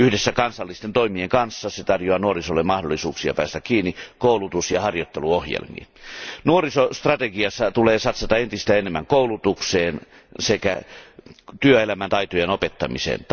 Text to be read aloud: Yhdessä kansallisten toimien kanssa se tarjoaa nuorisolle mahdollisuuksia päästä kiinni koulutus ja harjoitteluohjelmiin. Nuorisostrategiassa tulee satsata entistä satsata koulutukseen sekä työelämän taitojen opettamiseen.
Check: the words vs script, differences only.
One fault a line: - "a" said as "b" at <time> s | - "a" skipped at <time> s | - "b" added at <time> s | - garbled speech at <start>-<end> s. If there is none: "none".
- "satsata" said as "enemmän" at 8.8 s